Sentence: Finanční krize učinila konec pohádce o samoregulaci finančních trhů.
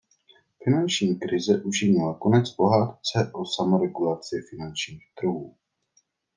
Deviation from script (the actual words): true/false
false